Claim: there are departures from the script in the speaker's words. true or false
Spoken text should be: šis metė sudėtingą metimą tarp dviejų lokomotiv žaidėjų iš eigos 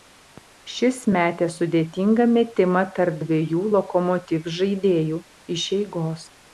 false